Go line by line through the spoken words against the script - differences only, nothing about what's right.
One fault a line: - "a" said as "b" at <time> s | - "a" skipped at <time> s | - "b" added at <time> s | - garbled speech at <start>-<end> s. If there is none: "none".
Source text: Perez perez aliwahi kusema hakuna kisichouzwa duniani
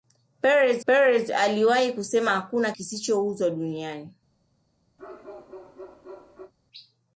none